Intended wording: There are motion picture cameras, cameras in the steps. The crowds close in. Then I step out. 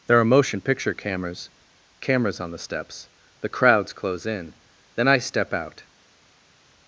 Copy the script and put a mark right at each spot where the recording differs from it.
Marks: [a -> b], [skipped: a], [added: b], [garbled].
There are motion picture cameras, cameras [in -> on] the steps. The crowds close in. Then I step out.